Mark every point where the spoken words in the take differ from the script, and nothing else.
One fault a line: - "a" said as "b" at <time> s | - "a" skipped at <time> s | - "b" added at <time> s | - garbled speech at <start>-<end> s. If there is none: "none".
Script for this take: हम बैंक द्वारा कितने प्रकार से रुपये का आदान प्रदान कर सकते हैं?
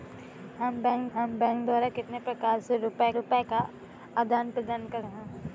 - "हम बैंक" added at 1.1 s
- "रुपये" added at 3.1 s
- "सकते" skipped at 5.0 s